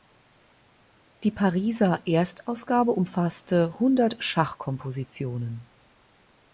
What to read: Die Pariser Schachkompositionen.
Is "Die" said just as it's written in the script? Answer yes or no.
yes